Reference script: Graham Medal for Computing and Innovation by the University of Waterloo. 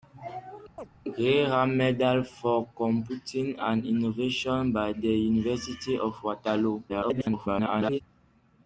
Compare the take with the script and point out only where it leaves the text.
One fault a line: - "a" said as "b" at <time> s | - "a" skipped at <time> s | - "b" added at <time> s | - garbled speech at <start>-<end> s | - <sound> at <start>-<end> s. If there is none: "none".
- chirp at 0.8-0.9 s
- garbled speech at 6.9-8.0 s